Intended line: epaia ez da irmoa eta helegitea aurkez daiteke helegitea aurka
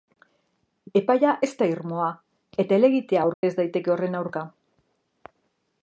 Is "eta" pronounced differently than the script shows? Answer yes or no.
no